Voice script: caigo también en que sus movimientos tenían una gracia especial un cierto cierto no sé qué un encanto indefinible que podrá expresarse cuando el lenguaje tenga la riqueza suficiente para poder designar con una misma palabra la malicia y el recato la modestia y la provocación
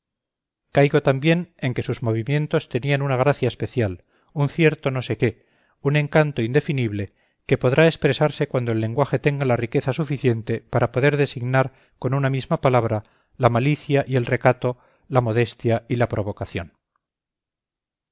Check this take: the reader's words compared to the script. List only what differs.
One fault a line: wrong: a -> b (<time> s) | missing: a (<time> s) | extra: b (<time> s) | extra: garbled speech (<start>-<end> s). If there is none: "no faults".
missing: cierto (4.9 s)